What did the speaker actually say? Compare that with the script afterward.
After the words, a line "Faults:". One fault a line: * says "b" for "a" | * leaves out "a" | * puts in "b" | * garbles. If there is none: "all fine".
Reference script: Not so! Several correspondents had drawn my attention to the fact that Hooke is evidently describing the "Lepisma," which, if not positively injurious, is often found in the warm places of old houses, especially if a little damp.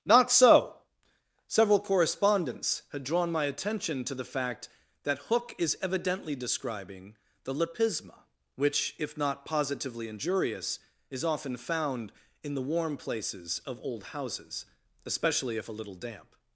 Not so! Several correspondents had drawn my attention to the fact that Hooke is evidently describing the "Lepisma," which, if not positively injurious, is often found in the warm places of old houses, especially if a little damp.
Faults:
all fine